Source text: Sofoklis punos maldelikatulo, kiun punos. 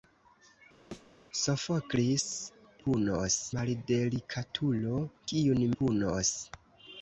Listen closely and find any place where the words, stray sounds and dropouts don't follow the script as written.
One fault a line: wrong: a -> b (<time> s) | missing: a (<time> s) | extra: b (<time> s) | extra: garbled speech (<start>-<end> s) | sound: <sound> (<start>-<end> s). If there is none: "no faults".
sound: thud (0.9-1.1 s)